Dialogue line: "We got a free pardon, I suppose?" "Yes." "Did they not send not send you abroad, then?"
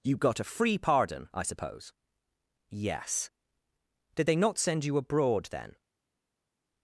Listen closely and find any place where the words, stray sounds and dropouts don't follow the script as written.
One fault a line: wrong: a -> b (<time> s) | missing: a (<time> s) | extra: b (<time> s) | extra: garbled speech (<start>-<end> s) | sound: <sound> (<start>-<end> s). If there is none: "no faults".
wrong: We -> You (0.0 s)
missing: not send (4.8 s)